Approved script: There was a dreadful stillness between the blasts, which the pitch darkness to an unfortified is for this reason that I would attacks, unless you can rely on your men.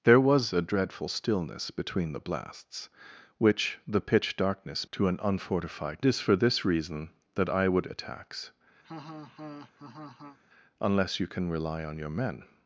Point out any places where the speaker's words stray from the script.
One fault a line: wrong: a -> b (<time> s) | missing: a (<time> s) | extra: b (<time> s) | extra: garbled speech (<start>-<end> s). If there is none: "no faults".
no faults